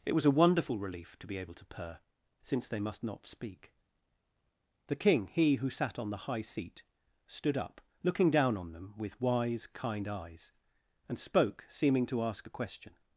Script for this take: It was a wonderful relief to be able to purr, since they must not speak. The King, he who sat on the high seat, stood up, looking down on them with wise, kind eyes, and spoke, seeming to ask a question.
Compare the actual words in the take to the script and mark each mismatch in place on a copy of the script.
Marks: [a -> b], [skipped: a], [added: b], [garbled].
It was a wonderful relief to be able to purr, since they must not speak. The King, he who sat on the high seat, stood up, looking down on them with wise, kind eyes, and spoke, seeming to ask a question.